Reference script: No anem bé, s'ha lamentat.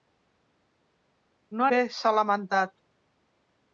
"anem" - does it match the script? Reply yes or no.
no